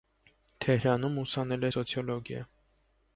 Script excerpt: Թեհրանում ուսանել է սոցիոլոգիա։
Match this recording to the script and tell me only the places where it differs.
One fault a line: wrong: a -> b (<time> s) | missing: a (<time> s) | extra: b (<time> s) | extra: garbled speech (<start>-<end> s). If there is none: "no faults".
no faults